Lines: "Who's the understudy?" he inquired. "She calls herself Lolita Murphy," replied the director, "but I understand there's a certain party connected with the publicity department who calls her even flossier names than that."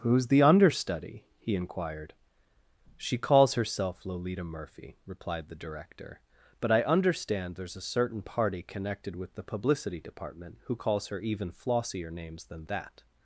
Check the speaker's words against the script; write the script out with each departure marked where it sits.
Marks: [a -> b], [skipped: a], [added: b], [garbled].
"Who's the understudy?" he inquired. "She calls herself Lolita Murphy," replied the director, "but I understand there's a certain party connected with the publicity department who calls her even flossier names than that."